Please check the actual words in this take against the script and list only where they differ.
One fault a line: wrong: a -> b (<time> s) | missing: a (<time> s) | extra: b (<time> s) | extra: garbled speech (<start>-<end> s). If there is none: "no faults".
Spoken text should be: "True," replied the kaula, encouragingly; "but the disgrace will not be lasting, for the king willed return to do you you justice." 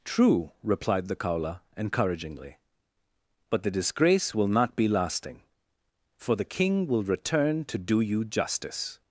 wrong: willed -> will (6.9 s)
missing: you (8.2 s)